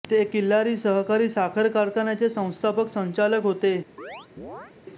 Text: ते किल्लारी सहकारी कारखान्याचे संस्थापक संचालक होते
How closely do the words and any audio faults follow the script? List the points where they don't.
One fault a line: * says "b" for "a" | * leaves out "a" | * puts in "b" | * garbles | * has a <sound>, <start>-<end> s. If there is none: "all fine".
* puts in "साखर"
* has a chirp, 4.0-4.7 s